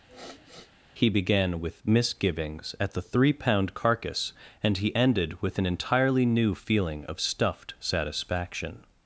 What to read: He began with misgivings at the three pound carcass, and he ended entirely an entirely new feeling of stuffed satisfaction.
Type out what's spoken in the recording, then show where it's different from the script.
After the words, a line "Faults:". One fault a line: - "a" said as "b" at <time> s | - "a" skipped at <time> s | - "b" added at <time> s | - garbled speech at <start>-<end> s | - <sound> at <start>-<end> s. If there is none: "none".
He began with misgivings at the three pound carcass, and he ended with an entirely new feeling of stuffed satisfaction.
Faults:
- sniff at 0.1-0.7 s
- "entirely" said as "with" at 5.4 s